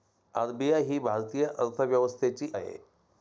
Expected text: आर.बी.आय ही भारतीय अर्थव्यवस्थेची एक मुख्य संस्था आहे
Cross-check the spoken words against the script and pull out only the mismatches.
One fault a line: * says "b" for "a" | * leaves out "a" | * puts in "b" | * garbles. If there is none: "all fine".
* leaves out "एक मुख्य संस्था"